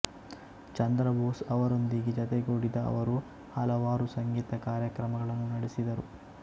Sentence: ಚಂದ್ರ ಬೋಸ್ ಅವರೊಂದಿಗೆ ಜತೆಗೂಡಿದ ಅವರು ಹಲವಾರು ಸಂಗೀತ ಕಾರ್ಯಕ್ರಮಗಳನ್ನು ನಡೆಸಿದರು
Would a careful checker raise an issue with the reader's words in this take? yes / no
no